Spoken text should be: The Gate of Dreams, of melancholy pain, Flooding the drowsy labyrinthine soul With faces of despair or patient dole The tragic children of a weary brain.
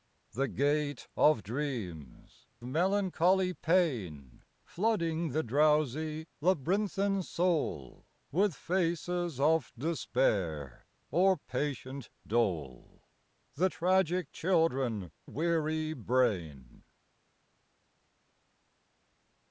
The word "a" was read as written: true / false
false